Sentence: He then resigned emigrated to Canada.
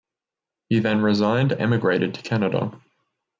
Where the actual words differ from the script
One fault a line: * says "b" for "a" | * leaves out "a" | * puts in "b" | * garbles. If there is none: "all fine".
all fine